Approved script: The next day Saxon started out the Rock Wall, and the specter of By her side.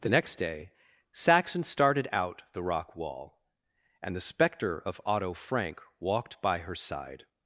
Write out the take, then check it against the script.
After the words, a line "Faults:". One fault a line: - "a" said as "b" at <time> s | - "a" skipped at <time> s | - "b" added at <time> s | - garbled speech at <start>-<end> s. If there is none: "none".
The next day Saxon started out the Rock Wall, and the specter of Otto Frank walked by her side.
Faults:
- "Otto Frank walked" added at 5.0 s